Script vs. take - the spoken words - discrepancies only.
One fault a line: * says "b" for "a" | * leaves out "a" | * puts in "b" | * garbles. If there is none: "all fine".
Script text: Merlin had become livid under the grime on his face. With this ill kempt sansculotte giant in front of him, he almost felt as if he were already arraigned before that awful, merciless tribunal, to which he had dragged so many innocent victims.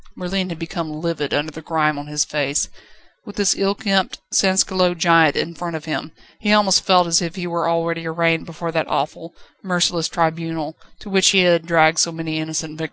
all fine